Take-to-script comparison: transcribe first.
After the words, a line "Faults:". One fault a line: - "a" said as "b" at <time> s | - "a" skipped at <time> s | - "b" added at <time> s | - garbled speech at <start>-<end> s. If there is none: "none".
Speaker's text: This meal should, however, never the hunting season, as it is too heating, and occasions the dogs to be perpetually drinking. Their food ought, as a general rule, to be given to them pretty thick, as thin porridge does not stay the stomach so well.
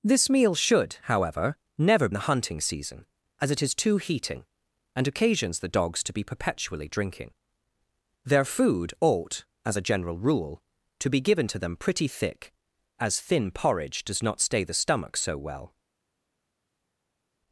This meal should, however, never the hunting season, as it is too heating, and occasions the dogs to be perpetually drinking. Their food ought, as a general rule, to be given to them pretty thick, as thin porridge does not stay the stomach so well.
Faults:
none